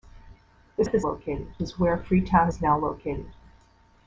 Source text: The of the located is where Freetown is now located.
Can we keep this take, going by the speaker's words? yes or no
yes